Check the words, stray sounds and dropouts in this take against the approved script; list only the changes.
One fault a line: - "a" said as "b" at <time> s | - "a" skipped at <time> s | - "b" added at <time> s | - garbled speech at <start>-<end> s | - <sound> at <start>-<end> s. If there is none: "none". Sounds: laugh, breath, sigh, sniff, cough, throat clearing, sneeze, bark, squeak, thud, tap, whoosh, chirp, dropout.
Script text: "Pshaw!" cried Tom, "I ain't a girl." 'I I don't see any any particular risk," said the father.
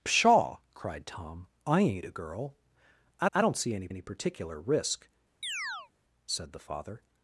- chirp at 5.4-5.9 s